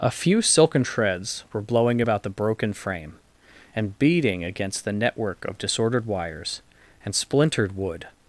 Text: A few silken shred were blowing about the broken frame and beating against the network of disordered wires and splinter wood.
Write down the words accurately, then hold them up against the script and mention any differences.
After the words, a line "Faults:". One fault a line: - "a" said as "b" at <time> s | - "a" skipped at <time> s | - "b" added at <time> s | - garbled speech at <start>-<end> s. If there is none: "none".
A few silken shreds were blowing about the broken frame and beating against the network of disordered wires and splintered wood.
Faults:
- "shred" said as "shreds" at 0.8 s
- "splinter" said as "splintered" at 7.1 s